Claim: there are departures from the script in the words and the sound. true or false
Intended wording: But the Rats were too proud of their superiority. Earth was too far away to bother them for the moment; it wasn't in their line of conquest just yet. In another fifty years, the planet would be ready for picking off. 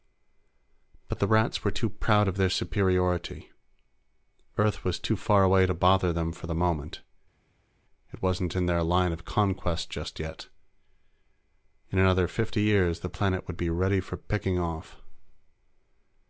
false